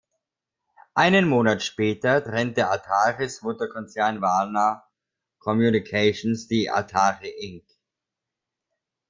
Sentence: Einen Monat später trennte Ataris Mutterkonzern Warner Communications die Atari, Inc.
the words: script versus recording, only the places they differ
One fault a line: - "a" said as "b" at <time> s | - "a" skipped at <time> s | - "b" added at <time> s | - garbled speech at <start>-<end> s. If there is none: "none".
none